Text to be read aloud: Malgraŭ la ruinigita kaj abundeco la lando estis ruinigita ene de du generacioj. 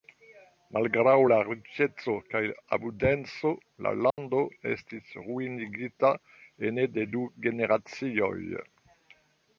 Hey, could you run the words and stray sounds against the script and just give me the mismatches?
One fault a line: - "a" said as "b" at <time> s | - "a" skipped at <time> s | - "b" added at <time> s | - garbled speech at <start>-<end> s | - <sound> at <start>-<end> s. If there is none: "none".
- "ruinigita" said as "riĉeco" at 1.5 s
- dropout at 4.1-4.2 s